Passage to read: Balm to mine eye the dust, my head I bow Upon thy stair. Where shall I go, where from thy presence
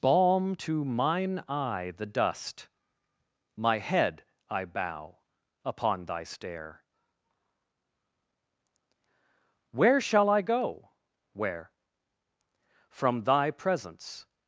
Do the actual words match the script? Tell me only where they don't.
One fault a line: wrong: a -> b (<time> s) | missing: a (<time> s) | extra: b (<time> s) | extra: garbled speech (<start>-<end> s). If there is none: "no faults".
no faults